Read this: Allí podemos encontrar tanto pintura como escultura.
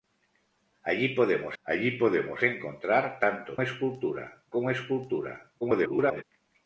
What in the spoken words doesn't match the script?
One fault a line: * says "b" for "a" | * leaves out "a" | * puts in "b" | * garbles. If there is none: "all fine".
* puts in "allí podemos"
* says "escultura" for "pintura"
* garbles